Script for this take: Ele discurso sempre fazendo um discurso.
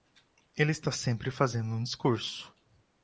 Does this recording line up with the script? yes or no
no